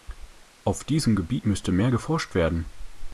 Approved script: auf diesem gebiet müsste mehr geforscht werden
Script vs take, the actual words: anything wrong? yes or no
no